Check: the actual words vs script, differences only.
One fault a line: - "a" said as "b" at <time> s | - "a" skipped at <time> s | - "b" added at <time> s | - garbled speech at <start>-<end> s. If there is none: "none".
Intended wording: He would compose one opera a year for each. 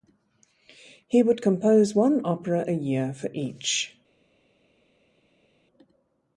none